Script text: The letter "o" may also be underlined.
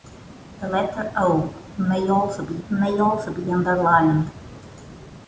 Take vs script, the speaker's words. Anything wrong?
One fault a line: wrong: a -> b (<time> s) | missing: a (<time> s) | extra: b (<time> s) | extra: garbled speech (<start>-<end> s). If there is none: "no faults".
extra: may also be (2.7 s)